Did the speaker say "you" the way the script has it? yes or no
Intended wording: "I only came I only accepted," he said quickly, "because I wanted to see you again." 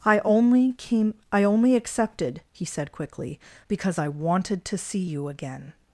yes